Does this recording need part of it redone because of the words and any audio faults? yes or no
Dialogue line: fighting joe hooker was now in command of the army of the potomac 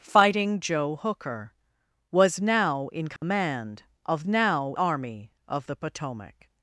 yes